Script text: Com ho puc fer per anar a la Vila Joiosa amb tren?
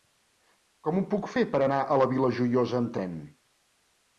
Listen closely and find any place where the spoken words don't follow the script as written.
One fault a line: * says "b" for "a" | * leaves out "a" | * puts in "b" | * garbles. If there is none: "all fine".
all fine